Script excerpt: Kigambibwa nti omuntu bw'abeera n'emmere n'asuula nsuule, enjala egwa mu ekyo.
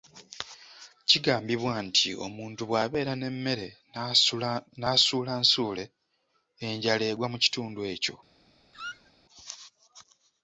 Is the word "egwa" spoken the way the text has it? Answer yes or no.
yes